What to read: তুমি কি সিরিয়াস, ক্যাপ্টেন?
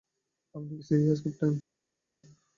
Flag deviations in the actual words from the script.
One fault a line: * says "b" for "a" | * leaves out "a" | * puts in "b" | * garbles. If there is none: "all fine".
* says "আপনি" for "তুমি"